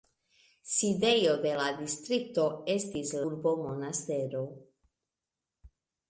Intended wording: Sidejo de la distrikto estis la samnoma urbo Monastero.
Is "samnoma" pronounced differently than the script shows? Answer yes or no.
yes